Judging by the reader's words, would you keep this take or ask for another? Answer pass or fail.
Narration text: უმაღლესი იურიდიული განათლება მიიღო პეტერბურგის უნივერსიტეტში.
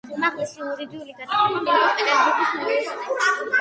pass